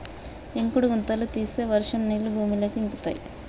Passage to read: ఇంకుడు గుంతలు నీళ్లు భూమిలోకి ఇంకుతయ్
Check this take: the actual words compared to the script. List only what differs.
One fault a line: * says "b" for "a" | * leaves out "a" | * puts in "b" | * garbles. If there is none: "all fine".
* puts in "తీస్తే వర్షం"